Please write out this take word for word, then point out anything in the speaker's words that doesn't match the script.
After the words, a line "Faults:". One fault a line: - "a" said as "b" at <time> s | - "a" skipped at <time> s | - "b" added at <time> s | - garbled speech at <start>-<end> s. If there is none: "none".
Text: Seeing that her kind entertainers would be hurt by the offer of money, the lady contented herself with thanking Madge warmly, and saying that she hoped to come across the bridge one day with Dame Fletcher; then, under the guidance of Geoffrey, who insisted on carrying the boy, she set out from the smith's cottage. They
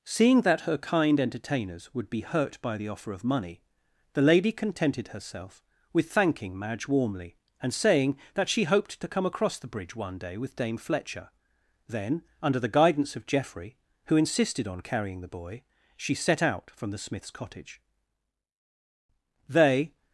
Seeing that her kind entertainers would be hurt by the offer of money, the lady contented herself with thanking Madge warmly, and saying that she hoped to come across the bridge one day with Dame Fletcher; then, under the guidance of Geoffrey, who insisted on carrying the boy, she set out from the smith's cottage. They
Faults:
none